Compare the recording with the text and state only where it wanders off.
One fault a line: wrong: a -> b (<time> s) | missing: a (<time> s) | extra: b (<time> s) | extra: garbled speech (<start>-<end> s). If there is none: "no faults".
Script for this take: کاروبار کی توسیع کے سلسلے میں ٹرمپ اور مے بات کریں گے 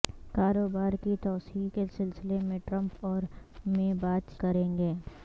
no faults